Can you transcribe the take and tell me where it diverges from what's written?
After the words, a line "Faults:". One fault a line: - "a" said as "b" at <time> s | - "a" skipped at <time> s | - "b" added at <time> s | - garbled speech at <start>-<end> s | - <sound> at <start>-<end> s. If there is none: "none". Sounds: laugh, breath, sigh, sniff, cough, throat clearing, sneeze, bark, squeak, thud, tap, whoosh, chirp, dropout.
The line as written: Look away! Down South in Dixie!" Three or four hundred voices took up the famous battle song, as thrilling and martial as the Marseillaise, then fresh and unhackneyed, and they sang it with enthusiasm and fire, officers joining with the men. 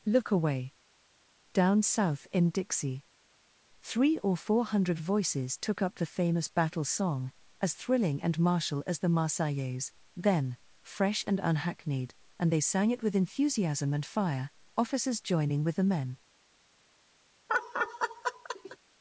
Look away! Down South in Dixie!" Three or four hundred voices took up the famous battle song, as thrilling and martial as the Marseillaise, then fresh and unhackneyed, and they sang it with enthusiasm and fire, officers joining with the men.
Faults:
- laugh at 17.5-18.8 s